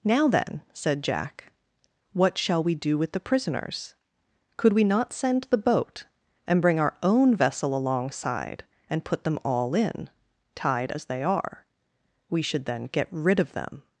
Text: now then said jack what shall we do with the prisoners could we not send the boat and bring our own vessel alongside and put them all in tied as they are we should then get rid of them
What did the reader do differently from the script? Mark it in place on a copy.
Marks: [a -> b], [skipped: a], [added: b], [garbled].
now then said jack what shall we do with the prisoners could we not send the boat and bring our own vessel alongside and put them all in tied as they are we should then get rid of them